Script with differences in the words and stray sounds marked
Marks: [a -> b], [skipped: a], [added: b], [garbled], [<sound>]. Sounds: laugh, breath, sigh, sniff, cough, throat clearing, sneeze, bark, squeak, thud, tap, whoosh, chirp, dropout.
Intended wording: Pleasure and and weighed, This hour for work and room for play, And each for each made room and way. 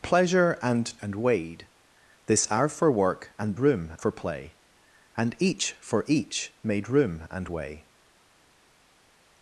Pleasure and and weighed, This hour for work and room for play, And each for each made room and way.